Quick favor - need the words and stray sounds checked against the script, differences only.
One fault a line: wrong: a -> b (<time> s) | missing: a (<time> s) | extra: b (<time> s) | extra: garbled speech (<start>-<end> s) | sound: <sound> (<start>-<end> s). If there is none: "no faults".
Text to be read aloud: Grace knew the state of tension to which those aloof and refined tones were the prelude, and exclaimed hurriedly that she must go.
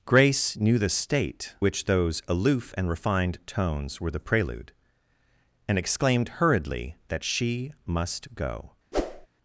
missing: of tension to (1.5 s)
sound: whoosh (8.9-9.3 s)